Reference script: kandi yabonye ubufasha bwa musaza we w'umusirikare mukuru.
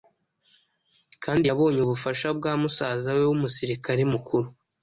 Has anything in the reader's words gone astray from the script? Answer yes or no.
no